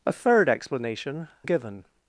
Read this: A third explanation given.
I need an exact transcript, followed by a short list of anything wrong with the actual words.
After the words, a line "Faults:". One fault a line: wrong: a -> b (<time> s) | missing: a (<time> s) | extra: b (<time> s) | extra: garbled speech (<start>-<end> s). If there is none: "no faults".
A third explanation given.
Faults:
no faults